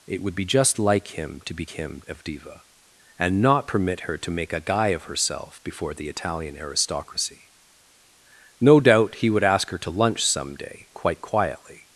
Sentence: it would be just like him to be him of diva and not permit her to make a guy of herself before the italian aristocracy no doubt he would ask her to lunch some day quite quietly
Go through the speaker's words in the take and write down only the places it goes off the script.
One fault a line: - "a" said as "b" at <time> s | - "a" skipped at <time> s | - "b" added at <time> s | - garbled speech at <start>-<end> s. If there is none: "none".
none